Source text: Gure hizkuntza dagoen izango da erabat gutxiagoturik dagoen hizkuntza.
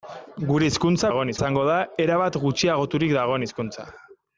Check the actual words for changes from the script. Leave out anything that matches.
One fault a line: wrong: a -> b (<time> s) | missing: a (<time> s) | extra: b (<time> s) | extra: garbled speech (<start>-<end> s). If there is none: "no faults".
no faults